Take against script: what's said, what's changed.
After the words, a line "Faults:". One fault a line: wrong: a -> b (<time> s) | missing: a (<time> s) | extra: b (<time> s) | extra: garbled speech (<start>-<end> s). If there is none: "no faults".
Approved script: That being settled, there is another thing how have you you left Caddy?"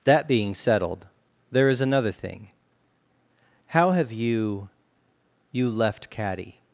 That being settled, there is another thing how have you you left Caddy?"
Faults:
no faults